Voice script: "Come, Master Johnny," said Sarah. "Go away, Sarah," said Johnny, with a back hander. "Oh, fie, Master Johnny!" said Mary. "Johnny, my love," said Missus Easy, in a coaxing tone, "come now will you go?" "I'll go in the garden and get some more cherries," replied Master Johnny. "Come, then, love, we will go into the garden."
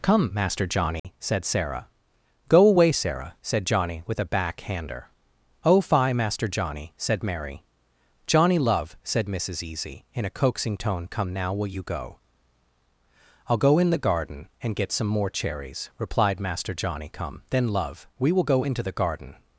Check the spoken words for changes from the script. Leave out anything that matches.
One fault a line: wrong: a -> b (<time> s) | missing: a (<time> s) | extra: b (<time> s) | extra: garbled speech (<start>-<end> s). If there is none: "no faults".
missing: my (8.6 s)